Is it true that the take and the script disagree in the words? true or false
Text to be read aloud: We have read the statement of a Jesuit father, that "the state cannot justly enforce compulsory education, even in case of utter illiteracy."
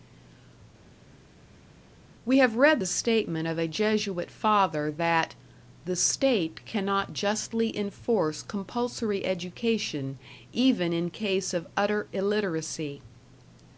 false